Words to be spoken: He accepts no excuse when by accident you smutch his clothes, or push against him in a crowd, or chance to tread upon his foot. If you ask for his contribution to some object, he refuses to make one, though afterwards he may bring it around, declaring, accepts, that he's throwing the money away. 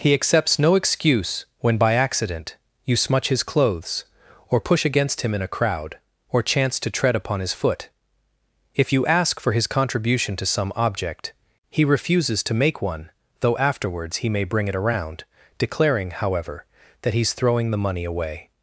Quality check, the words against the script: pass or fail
fail